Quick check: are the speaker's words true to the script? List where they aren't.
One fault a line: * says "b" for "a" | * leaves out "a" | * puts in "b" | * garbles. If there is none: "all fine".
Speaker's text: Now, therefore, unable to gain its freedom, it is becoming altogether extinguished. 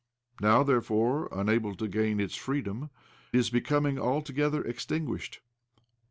* leaves out "it"